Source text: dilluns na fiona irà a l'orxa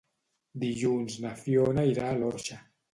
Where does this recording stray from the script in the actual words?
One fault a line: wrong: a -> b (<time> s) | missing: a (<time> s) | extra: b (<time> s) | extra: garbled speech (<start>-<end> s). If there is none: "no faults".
no faults